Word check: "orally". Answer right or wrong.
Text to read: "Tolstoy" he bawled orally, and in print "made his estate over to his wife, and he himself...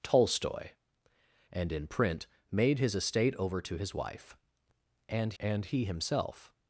wrong